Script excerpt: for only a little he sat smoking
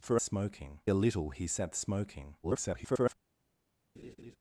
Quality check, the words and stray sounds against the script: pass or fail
fail